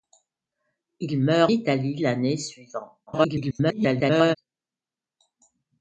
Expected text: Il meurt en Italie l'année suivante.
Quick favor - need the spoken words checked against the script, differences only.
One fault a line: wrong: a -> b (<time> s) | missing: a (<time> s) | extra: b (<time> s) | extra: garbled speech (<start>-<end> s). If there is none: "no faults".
missing: en (1.5 s)
extra: garbled speech (3.1-4.4 s)